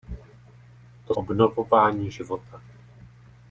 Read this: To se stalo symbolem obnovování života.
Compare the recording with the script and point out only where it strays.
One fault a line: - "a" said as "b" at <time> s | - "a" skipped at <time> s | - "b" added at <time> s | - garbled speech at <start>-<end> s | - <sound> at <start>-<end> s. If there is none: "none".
- "se stalo symbolem" skipped at 1.1 s